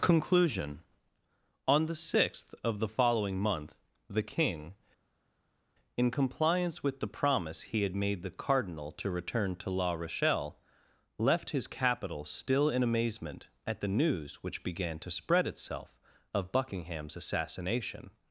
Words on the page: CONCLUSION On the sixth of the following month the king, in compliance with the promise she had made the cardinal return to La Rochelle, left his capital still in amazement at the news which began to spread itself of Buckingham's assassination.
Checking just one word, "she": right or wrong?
wrong